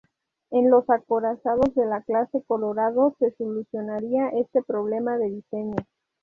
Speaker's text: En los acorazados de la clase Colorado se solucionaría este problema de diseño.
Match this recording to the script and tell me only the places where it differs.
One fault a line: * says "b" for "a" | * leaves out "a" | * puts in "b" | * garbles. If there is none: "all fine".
all fine